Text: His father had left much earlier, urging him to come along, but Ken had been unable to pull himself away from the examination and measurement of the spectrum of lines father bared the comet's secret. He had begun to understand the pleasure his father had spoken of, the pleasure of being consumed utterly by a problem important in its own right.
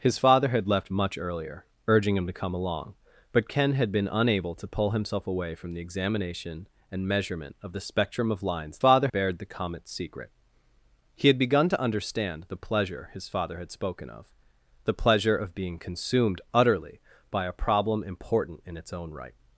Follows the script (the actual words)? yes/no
yes